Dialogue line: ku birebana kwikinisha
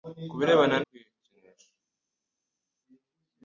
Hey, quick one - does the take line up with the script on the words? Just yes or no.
yes